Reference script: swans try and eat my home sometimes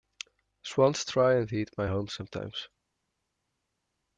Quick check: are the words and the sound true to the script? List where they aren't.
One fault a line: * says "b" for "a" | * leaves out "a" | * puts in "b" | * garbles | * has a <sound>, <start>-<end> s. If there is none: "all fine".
all fine